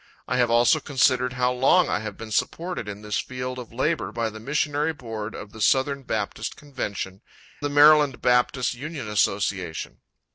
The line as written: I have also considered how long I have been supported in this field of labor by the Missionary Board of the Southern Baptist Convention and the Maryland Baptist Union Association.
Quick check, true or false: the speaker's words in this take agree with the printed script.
false